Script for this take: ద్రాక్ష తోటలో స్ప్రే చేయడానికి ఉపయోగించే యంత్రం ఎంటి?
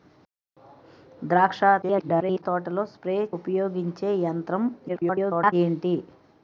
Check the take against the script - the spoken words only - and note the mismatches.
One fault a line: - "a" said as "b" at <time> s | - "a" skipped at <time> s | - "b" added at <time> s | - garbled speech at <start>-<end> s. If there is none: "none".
- garbled speech at 1.8-2.4 s
- "చేయడానికి" skipped at 3.2 s
- garbled speech at 4.9-5.5 s